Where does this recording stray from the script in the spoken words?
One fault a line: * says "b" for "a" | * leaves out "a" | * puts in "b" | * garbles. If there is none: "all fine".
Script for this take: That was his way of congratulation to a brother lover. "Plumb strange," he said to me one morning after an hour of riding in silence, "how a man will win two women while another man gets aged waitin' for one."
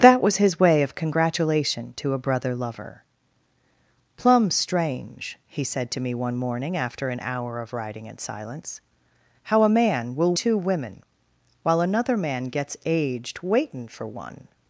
* leaves out "win"